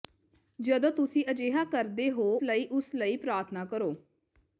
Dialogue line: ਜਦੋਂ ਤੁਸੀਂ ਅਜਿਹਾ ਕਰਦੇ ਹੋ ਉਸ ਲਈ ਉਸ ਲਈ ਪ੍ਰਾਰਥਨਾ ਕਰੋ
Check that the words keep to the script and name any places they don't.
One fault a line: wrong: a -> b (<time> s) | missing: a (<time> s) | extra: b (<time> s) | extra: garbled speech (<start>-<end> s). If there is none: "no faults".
missing: ਉਸ (2.2 s)